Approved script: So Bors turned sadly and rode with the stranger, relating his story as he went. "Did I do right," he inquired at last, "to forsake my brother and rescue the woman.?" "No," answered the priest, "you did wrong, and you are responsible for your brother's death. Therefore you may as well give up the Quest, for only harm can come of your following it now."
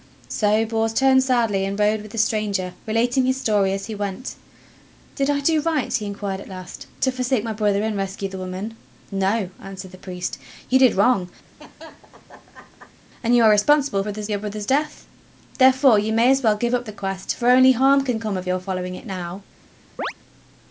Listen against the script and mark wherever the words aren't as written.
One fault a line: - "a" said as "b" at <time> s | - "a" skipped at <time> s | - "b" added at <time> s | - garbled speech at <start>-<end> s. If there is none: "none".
- "for" said as "brother's" at 14.0 s